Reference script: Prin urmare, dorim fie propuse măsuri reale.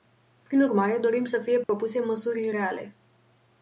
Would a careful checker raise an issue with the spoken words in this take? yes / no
yes